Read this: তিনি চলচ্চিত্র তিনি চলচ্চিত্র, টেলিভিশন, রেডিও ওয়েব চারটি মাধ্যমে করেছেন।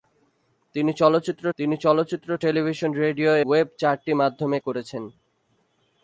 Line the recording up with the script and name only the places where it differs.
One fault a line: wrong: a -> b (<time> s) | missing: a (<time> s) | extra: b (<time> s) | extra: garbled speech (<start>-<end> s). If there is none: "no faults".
no faults